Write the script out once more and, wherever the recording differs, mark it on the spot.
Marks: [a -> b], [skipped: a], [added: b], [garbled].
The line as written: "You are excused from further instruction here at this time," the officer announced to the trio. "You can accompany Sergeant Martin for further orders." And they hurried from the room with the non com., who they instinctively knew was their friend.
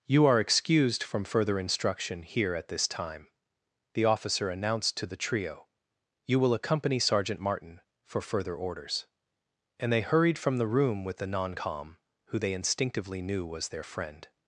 "You are excused from further instruction here at this time," the officer announced to the trio. "You [can -> will] accompany Sergeant Martin for further orders." And they hurried from the room with the non com., who they instinctively knew was their friend.